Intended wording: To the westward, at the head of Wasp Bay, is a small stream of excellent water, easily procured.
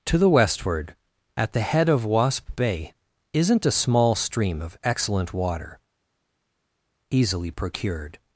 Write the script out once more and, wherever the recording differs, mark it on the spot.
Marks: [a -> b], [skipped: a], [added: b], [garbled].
To the westward, at the head of Wasp Bay, [is -> isn't] a small stream of excellent water, easily procured.